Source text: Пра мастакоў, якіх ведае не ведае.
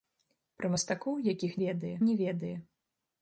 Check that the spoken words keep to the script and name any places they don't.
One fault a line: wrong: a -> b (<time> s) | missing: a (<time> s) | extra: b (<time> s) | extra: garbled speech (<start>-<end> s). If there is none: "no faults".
no faults